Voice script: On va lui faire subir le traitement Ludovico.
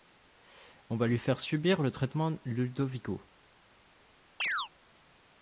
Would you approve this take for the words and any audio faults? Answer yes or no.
no